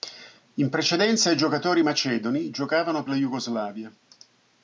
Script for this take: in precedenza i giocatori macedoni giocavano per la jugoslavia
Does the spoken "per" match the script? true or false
false